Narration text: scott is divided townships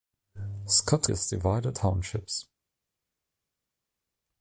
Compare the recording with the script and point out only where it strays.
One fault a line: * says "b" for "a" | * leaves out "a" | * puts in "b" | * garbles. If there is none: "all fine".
all fine